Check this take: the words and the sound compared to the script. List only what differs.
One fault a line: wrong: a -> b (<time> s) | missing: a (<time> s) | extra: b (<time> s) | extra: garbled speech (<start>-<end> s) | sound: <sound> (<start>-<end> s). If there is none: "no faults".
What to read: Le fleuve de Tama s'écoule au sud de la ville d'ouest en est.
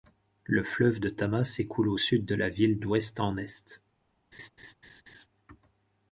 sound: laugh (4.3-5.3 s)